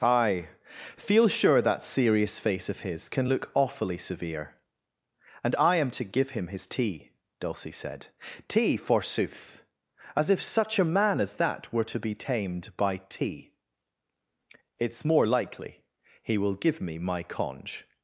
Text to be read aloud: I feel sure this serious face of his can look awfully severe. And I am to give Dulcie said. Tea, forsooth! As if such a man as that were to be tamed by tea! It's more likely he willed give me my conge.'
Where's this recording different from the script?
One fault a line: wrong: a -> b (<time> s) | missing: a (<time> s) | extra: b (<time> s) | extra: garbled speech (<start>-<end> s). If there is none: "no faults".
wrong: this -> that (1.6 s)
extra: him his tea (6.3 s)
wrong: willed -> will (16.4 s)